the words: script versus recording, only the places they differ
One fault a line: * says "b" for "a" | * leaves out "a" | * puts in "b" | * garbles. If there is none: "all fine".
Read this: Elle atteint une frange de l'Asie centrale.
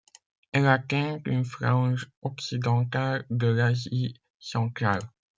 * puts in "occidentale"